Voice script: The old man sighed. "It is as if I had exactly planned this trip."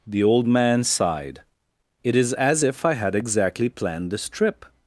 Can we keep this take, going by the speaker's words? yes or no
yes